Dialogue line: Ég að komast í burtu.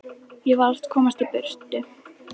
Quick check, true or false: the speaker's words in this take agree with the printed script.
false